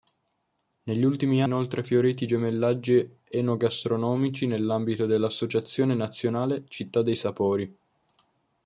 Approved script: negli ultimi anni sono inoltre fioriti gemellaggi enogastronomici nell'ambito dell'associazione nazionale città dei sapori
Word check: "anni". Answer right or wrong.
wrong